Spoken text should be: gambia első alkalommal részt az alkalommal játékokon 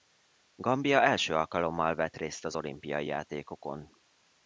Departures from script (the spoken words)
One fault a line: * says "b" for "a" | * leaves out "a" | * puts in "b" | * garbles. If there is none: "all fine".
* puts in "vett"
* says "olimpiai" for "alkalommal"